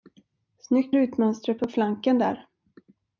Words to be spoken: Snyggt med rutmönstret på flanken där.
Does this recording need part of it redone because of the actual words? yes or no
yes